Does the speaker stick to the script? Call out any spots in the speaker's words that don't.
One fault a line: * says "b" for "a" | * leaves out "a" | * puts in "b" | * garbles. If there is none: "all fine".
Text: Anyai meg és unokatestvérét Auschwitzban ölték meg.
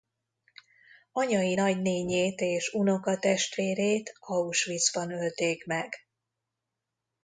* says "nagynénjét" for "meg"